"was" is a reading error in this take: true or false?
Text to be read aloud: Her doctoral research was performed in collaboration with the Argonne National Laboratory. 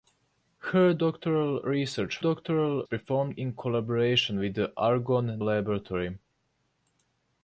true